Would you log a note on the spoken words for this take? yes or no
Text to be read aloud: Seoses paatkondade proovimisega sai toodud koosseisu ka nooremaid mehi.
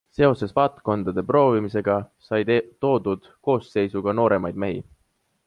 no